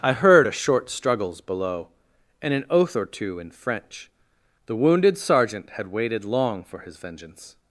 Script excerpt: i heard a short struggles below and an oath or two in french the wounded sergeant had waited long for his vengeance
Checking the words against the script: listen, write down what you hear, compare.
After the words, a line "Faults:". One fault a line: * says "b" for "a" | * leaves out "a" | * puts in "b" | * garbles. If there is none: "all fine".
i heard a short struggles below and an oath or two in french the wounded sergeant had waited long for his vengeance
Faults:
all fine